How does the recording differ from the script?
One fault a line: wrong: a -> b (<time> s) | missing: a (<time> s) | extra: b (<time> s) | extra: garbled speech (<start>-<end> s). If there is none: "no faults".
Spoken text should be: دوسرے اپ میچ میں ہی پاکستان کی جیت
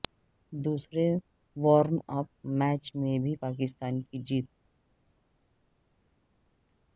extra: وارم (1.6 s)
wrong: ہی -> بھی (3.2 s)